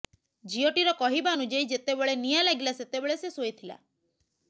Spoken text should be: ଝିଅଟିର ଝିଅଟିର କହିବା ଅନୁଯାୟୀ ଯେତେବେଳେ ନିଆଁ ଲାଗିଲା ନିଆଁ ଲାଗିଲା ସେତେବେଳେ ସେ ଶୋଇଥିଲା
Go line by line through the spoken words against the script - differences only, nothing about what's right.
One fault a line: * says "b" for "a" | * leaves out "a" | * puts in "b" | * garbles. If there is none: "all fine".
* leaves out "ଝିଅଟିର"
* leaves out "ନିଆଁ ଲାଗିଲା"